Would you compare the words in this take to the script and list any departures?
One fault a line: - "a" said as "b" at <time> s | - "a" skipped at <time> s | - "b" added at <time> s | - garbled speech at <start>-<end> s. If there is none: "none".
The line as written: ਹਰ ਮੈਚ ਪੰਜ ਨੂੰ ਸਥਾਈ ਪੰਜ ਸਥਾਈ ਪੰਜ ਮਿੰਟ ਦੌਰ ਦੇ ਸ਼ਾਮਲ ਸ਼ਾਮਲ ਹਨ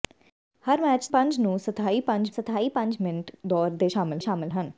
none